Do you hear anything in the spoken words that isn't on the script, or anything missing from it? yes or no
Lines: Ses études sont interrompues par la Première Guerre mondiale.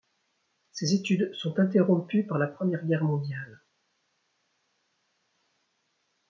no